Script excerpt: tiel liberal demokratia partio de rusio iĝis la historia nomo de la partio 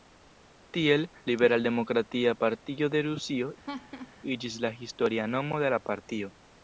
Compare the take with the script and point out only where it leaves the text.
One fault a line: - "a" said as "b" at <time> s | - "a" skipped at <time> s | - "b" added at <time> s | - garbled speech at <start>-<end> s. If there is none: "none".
none